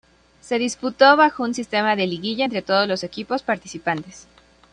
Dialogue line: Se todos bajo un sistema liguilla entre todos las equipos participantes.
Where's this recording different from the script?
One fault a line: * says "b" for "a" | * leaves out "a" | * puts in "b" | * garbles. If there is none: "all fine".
* says "disputó" for "todos"
* puts in "de"
* says "los" for "las"